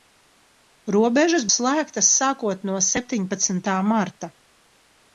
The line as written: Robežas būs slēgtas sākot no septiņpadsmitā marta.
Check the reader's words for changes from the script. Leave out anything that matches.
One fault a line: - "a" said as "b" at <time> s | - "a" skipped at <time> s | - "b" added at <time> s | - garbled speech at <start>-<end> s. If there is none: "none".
- "būs" skipped at 1.4 s